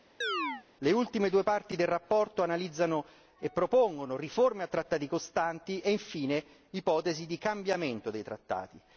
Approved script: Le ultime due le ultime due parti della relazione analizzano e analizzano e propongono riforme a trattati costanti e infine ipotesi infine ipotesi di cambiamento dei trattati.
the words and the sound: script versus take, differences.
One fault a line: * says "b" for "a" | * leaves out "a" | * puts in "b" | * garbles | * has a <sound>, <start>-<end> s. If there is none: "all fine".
* has a chirp, 0.2-0.6 s
* leaves out "le ultime due"
* leaves out "analizzano e"
* leaves out "infine ipotesi"